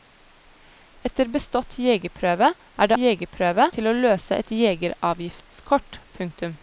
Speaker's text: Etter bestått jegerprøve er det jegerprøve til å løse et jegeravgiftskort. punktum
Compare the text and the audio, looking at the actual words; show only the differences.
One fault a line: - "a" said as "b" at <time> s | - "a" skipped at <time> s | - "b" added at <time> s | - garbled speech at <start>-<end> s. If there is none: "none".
none